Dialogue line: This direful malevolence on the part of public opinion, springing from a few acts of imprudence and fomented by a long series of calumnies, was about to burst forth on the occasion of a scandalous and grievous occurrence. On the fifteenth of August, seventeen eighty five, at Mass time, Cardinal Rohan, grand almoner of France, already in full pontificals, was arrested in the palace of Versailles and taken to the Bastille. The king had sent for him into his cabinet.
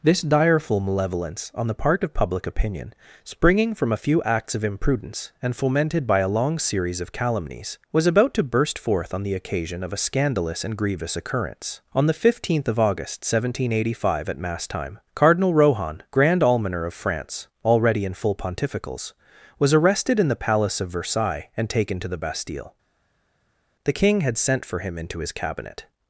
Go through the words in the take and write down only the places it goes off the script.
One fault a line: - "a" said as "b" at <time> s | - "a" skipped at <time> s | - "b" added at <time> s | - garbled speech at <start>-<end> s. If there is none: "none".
none